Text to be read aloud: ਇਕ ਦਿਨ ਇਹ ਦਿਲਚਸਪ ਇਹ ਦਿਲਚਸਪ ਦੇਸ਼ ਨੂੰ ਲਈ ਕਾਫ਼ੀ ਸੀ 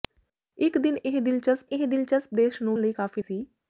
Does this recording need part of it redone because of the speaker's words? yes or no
no